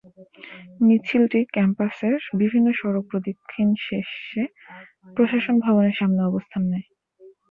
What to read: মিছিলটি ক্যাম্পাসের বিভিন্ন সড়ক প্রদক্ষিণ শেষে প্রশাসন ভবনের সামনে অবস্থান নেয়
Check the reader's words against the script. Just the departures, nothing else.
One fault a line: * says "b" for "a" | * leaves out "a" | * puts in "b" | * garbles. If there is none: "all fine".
all fine